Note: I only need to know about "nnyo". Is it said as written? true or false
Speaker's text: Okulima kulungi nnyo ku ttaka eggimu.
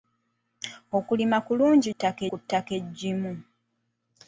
false